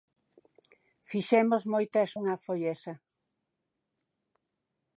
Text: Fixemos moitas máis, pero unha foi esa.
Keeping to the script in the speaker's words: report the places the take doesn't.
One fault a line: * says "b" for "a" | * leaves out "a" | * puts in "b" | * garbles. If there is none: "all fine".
* leaves out "máis pero"